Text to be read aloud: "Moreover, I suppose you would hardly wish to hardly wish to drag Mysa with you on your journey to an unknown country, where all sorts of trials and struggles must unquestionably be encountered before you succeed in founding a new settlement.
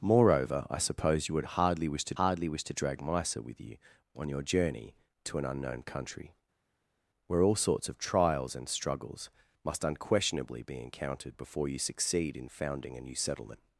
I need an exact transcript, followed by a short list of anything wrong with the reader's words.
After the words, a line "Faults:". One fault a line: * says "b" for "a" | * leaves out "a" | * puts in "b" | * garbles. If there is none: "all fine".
"Moreover, I suppose you would hardly wish to hardly wish to drag Mysa with you on your journey to an unknown country, where all sorts of trials and struggles must unquestionably be encountered before you succeed in founding a new settlement.
Faults:
all fine